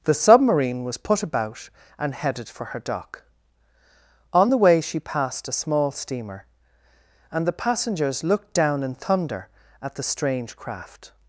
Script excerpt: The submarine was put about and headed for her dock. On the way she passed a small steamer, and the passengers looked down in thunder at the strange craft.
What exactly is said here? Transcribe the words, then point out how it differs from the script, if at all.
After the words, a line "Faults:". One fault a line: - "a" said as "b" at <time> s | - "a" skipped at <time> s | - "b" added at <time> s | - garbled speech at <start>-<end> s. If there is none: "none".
The submarine was put about and headed for her dock. On the way she passed a small steamer, and the passengers looked down in thunder at the strange craft.
Faults:
none